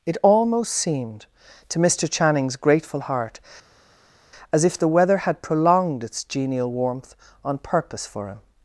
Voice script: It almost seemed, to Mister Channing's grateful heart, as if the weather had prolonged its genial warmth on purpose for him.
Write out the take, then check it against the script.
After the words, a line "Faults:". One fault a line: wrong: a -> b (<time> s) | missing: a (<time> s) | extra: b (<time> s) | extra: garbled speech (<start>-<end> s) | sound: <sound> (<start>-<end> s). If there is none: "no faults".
It almost seemed, to Mister Channing's grateful heart, as if the weather had prolonged its genial warmth on purpose for him.
Faults:
no faults